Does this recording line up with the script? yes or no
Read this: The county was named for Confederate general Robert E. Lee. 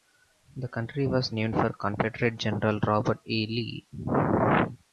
yes